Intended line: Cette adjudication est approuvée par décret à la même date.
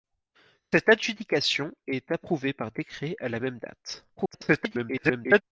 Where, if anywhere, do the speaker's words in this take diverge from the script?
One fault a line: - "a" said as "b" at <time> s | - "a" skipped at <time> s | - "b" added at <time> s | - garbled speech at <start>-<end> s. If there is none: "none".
- garbled speech at 4.2-5.4 s